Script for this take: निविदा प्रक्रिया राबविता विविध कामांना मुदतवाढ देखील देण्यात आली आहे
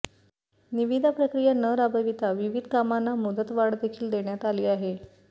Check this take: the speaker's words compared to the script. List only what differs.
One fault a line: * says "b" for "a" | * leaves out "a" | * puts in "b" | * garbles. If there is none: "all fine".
* puts in "न"